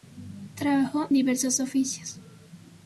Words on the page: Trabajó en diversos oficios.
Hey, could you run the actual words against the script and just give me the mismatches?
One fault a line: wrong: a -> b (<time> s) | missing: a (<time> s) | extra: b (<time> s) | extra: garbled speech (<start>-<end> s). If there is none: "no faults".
missing: en (1.1 s)